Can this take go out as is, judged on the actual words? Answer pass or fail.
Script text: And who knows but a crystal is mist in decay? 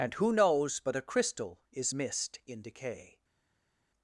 pass